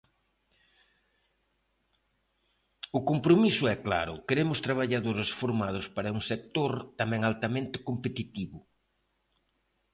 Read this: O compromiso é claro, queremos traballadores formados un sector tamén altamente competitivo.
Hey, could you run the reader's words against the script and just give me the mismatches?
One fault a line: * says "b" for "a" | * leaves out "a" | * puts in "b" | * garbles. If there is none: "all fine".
* puts in "para"